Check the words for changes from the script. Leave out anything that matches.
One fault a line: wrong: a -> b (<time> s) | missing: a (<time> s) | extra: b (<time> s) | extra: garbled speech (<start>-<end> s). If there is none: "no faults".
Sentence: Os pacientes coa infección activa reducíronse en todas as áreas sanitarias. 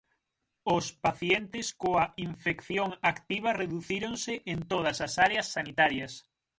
no faults